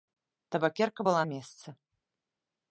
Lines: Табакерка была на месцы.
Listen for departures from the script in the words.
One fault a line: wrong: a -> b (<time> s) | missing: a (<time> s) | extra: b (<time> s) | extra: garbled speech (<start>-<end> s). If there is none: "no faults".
missing: на (1.2 s)